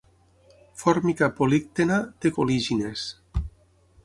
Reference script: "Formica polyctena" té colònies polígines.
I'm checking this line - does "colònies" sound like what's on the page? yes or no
no